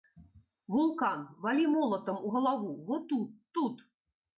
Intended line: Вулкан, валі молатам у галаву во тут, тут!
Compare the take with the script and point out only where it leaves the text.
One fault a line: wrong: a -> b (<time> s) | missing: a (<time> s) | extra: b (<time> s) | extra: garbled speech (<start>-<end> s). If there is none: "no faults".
no faults